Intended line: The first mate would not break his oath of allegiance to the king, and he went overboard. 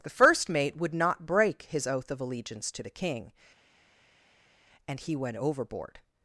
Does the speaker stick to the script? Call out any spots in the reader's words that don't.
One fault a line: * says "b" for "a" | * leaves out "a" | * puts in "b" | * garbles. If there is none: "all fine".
all fine